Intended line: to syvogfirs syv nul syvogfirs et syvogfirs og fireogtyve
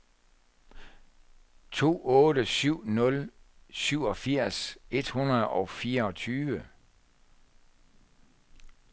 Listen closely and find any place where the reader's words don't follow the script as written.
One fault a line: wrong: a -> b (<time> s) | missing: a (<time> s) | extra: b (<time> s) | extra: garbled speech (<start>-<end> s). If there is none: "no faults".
wrong: syvogfirs -> otte (2.1 s)
wrong: syvogfirs -> hundrede (5.1 s)